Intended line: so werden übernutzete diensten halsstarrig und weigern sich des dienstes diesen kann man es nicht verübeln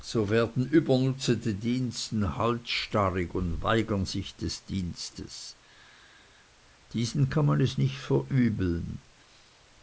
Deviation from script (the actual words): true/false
false